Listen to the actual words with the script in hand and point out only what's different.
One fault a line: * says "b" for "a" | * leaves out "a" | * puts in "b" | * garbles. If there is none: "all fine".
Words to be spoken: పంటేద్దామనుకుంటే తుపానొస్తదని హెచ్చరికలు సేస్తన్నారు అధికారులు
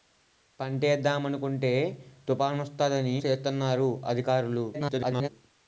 * leaves out "హెచ్చరికలు"
* garbles